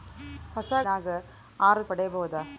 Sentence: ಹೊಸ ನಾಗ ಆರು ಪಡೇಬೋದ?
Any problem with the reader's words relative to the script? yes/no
no